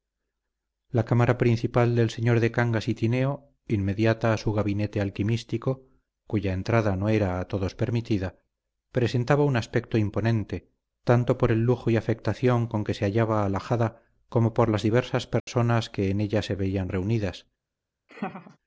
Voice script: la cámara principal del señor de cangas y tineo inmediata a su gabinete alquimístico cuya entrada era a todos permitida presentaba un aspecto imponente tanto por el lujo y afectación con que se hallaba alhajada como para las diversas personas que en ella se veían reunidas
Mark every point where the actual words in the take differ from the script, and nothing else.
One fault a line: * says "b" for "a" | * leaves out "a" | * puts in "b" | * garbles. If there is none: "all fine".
* puts in "no"
* says "por" for "para"